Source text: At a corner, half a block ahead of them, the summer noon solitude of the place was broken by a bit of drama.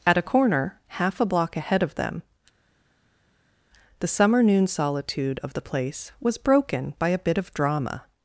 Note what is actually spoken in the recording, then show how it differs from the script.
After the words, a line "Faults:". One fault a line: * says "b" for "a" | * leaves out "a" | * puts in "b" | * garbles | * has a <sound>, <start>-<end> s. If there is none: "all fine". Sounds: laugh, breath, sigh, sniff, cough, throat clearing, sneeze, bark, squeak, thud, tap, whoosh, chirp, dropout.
At a corner, half a block ahead of them, the summer noon solitude of the place was broken by a bit of drama.
Faults:
all fine